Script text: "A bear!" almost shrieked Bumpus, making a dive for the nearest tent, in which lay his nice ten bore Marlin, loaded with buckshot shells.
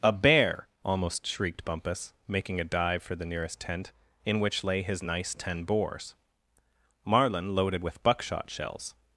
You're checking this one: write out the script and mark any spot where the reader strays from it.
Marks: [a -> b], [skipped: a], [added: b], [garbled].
"A bear!" almost shrieked Bumpus, making a dive for the nearest tent, in which lay his nice ten [bore -> bores] Marlin, loaded with buckshot shells.